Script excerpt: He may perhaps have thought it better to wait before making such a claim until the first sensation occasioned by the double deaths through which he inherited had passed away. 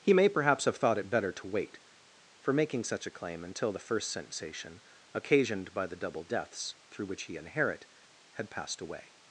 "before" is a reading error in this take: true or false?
true